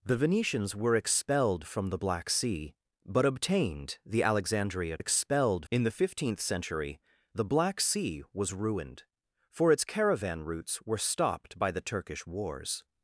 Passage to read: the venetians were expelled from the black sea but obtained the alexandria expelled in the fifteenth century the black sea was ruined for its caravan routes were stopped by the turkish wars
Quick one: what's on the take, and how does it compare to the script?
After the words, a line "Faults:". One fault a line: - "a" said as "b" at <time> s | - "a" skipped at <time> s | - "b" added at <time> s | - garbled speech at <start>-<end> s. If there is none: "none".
the venetians were expelled from the black sea but obtained the alexandria expelled in the fifteenth century the black sea was ruined for its caravan routes were stopped by the turkish wars
Faults:
none